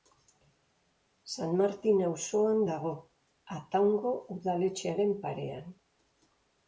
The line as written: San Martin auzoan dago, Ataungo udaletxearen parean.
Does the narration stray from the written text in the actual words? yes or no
no